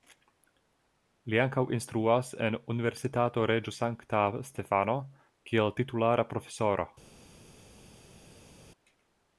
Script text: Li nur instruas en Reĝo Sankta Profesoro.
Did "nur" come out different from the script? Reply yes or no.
yes